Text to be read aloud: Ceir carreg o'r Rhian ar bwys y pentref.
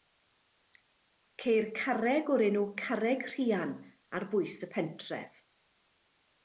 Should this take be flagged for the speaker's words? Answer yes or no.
yes